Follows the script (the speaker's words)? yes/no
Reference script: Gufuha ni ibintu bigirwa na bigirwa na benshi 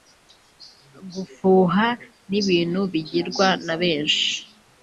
no